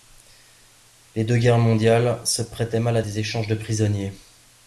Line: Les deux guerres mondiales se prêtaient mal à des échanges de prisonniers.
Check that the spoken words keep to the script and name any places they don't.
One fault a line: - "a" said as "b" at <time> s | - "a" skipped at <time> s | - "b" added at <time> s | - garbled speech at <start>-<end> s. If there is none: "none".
none